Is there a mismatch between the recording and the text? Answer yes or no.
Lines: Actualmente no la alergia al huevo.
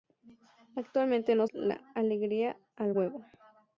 no